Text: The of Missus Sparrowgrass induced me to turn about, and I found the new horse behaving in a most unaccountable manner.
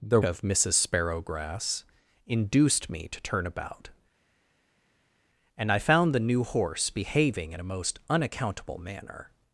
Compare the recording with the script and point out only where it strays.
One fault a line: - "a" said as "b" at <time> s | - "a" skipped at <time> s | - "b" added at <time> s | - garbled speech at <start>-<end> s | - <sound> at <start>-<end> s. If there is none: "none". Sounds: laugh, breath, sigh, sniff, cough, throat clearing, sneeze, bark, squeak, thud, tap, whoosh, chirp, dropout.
none